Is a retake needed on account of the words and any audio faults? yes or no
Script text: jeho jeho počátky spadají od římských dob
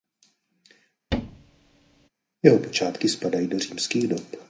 yes